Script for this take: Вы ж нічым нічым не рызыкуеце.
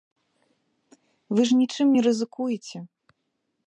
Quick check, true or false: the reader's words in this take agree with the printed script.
false